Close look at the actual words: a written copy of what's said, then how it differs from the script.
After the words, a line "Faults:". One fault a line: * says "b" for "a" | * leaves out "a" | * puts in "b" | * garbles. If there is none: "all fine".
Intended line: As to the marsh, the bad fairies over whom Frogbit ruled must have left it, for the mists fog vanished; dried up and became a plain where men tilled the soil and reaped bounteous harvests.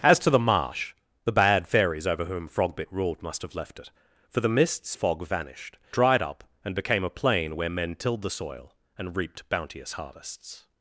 As to the marsh, the bad fairies over whom Frogbit ruled must have left it, for the mists fog vanished; dried up and became a plain where men tilled the soil and reaped bounteous harvests.
Faults:
all fine